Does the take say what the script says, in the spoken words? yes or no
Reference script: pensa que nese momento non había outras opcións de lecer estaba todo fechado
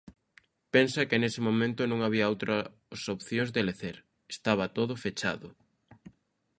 yes